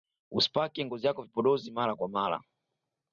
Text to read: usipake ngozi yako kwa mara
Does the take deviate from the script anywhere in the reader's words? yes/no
yes